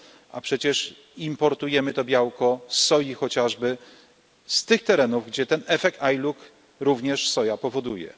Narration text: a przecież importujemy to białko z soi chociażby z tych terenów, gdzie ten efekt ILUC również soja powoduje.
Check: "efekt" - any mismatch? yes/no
no